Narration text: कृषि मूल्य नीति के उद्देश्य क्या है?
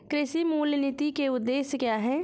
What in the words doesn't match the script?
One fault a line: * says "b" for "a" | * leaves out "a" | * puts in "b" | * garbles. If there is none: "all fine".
all fine